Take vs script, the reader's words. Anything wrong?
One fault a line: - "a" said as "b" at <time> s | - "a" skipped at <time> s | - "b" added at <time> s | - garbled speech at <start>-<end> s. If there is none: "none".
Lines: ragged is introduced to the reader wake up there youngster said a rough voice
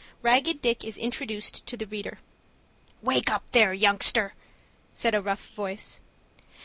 - "dick" added at 0.6 s